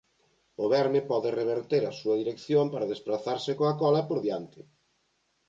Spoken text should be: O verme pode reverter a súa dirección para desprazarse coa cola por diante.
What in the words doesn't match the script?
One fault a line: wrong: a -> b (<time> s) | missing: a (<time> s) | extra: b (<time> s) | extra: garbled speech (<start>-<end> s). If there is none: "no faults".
no faults